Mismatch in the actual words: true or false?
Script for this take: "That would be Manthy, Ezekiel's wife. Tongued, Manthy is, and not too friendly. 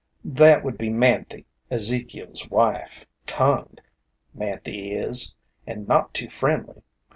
false